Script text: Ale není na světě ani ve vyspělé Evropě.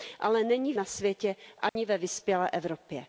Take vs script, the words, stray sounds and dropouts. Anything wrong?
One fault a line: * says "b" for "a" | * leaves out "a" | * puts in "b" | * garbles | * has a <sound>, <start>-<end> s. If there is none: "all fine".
* has a dropout, 1.7-1.8 s